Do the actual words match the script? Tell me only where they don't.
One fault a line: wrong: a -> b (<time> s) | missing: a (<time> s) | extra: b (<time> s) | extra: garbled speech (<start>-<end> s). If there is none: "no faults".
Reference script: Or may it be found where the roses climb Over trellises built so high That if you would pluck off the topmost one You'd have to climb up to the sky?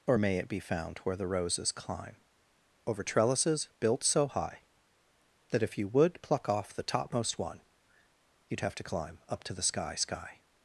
extra: sky (10.0 s)